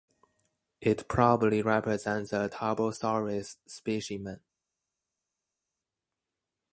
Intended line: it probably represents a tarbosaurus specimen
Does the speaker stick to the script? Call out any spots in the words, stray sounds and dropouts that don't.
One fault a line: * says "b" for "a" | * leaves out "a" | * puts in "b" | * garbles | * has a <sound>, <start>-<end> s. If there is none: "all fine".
all fine